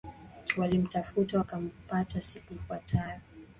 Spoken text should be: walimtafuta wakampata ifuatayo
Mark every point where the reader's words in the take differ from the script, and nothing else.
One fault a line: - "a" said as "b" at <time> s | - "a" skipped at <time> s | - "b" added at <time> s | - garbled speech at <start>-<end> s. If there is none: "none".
- "siku" added at 2.2 s